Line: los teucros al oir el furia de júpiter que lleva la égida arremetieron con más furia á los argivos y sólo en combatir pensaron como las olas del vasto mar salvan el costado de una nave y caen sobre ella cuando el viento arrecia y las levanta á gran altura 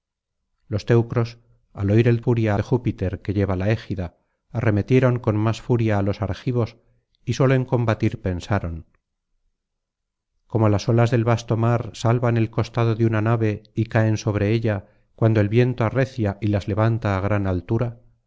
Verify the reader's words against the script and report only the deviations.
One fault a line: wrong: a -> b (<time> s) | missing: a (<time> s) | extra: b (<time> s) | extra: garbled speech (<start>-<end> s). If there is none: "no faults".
no faults